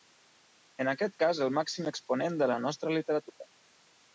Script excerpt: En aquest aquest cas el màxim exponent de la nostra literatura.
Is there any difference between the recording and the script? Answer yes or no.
yes